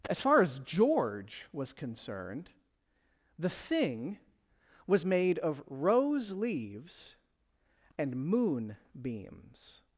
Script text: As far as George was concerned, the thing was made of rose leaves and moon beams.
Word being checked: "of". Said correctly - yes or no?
yes